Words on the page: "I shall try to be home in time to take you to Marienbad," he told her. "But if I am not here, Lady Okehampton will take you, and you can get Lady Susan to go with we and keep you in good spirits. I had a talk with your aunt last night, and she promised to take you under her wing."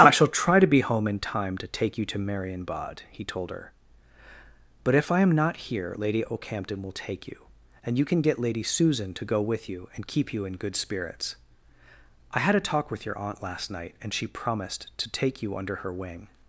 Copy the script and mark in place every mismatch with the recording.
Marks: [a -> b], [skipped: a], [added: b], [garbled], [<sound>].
"I shall try to be home in time to take you to Marienbad," he told her. "But if I am not here, Lady Okehampton will take you, and you can get Lady Susan to go with [we -> you] and keep you in good spirits. I had a talk with your aunt last night, and she promised to take you under her wing."